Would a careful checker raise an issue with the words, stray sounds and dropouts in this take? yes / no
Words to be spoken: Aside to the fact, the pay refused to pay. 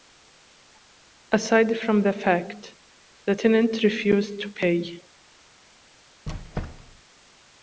yes